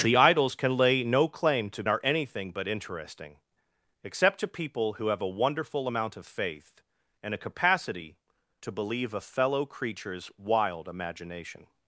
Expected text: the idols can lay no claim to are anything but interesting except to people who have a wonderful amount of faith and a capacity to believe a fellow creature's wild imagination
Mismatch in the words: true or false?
false